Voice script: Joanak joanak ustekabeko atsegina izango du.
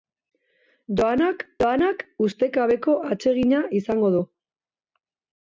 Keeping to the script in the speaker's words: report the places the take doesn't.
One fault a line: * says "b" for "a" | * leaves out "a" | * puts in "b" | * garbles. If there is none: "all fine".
all fine